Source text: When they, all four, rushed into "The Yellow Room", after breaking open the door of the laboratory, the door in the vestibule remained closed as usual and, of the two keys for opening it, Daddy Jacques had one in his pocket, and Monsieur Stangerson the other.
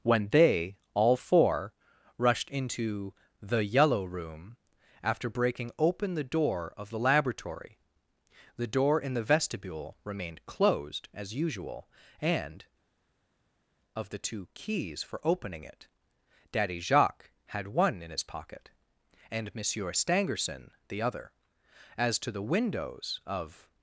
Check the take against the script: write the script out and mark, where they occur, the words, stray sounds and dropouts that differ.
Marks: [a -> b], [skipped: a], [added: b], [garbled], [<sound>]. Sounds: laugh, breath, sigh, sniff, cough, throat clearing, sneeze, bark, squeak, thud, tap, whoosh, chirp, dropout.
When they, all four, rushed into "The Yellow Room", after breaking open the door of the laboratory, the door in the vestibule remained closed as usual and, of the two keys for opening it, Daddy Jacques had one in his pocket, and Monsieur Stangerson the other. [added: As to the windows of]